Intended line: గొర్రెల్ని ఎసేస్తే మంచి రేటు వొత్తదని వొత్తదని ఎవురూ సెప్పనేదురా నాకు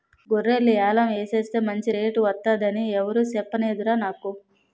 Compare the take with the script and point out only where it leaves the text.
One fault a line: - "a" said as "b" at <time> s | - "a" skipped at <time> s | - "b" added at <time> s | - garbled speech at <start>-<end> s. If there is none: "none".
- "యాలం" added at 0.7 s
- "వొత్తదని" skipped at 2.9 s